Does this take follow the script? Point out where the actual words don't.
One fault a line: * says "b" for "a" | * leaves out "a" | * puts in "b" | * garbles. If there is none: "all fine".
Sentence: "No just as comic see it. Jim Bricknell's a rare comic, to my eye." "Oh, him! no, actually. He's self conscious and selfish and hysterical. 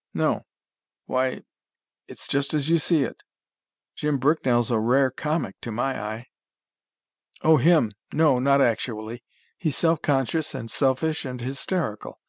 * puts in "why It's"
* says "you" for "comic"
* puts in "not"